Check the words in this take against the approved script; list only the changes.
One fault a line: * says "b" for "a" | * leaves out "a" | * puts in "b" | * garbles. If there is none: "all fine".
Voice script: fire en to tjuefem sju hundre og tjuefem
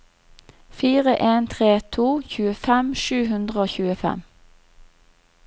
* puts in "tre"